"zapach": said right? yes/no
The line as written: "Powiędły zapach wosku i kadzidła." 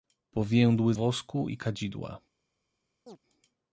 no